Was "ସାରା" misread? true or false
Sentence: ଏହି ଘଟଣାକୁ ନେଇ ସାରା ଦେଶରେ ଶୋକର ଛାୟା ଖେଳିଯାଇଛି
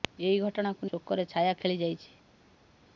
true